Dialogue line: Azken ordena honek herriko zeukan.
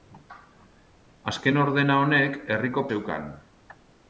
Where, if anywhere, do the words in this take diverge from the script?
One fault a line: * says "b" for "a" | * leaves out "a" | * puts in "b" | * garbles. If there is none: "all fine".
all fine